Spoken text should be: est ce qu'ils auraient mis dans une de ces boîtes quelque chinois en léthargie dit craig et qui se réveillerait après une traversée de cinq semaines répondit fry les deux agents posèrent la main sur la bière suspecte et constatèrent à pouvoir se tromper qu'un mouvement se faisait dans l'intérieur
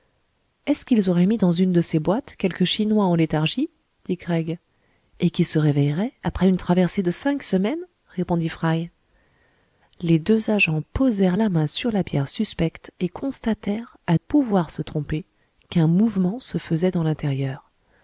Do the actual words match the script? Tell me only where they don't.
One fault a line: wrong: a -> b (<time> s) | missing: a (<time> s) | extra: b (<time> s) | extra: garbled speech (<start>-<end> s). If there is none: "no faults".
no faults